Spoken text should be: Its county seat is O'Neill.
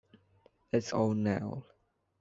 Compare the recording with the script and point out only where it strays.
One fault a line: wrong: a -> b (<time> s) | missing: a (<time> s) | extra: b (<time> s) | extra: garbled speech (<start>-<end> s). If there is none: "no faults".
missing: county seat is (0.9 s)